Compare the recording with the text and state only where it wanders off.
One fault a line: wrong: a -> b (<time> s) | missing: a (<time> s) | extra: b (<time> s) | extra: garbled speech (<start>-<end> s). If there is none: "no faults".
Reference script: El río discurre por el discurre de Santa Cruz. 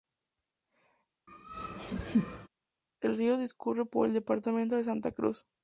wrong: discurre -> departamento (4.1 s)